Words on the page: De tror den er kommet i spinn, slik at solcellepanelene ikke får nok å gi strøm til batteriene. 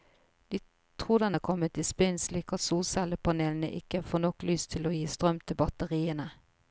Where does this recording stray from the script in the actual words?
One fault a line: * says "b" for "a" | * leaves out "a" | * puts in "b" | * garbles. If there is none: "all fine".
* puts in "lys til"